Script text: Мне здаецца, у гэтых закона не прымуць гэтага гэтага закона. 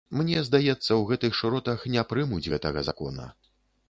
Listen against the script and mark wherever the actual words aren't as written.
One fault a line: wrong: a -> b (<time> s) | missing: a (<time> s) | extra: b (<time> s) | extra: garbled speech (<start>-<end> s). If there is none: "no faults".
wrong: закона -> шыротах (1.4 s)
missing: гэтага (2.9 s)